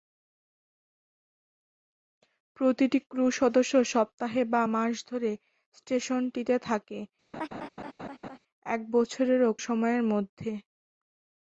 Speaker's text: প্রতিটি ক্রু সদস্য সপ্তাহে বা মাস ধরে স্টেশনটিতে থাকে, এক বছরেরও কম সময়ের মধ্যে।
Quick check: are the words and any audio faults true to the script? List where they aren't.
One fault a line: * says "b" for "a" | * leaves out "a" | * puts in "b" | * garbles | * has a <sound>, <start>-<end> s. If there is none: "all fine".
* has a laugh, 7.3-8.4 s
* leaves out "কম"